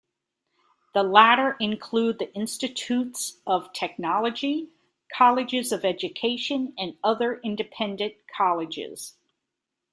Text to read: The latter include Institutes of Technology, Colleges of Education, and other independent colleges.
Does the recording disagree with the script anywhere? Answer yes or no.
yes